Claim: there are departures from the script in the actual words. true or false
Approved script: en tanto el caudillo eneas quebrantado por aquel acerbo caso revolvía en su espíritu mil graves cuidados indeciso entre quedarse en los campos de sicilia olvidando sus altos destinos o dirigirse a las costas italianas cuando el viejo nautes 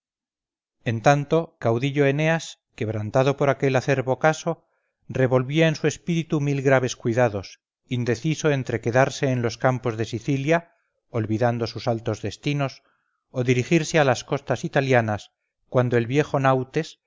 true